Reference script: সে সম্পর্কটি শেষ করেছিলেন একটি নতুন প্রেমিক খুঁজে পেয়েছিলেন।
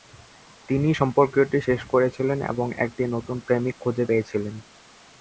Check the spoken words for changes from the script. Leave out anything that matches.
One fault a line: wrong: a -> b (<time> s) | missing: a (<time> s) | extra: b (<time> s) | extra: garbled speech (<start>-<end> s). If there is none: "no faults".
wrong: সে -> তিনি (0.7 s)
extra: এবং (2.5 s)